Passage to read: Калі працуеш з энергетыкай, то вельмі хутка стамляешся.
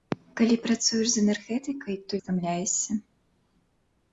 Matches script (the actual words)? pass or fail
fail